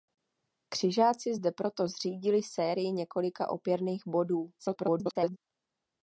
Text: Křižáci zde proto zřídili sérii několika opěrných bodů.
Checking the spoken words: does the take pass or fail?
fail